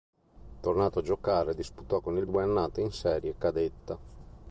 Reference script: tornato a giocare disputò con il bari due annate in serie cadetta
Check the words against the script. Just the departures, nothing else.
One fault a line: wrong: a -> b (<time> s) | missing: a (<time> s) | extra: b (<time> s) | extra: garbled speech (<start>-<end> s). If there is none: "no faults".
missing: bari (2.2 s)